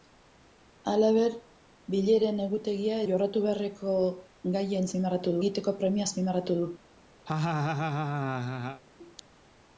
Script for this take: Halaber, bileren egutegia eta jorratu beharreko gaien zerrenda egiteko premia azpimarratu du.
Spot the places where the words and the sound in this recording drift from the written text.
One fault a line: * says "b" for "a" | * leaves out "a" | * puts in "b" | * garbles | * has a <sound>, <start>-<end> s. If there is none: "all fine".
* leaves out "eta"
* says "azpimarratu" for "zerrenda"
* has a laugh, 7.3-8.8 s